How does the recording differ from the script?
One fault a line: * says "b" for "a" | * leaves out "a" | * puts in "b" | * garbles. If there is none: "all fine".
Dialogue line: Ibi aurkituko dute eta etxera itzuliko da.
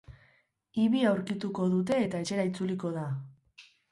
all fine